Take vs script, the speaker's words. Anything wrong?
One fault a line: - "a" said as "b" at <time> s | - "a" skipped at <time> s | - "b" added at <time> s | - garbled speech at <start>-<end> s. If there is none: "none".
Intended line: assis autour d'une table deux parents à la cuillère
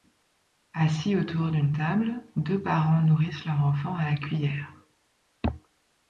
- "nourrissent leur enfant" added at 3.0 s